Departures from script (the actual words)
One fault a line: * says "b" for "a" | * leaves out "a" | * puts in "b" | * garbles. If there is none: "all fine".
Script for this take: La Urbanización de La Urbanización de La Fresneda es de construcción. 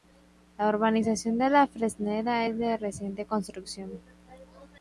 * leaves out "Urbanización de La"
* puts in "reciente"